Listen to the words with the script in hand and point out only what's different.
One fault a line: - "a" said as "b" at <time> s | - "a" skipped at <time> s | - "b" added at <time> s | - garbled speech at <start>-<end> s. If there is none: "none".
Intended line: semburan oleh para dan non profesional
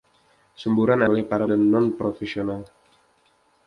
none